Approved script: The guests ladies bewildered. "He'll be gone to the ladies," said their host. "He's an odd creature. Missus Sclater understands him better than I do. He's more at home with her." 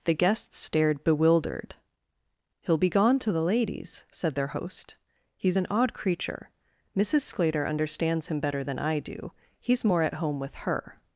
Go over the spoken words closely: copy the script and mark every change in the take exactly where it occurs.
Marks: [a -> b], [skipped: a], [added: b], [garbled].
The guests [ladies -> stared] bewildered. "He'll be gone to the ladies," said their host. "He's an odd creature. Missus Sclater understands him better than I do. He's more at home with her."